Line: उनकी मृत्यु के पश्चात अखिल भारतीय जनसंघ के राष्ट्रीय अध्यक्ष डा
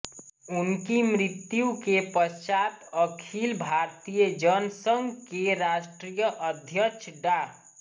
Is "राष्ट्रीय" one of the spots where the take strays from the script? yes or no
no